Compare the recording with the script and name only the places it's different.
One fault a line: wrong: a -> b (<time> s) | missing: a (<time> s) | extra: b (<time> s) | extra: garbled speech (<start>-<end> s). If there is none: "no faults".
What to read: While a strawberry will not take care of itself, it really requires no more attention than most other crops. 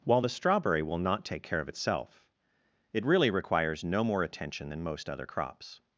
wrong: a -> the (0.2 s)